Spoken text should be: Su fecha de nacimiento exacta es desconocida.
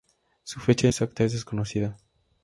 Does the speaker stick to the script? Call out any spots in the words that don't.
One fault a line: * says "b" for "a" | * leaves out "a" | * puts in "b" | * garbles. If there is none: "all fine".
* leaves out "nacimiento"